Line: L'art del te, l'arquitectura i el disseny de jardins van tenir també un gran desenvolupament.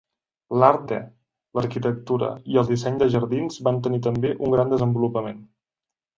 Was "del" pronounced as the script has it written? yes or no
no